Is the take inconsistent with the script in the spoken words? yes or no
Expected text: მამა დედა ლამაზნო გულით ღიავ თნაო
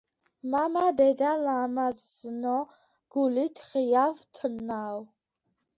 no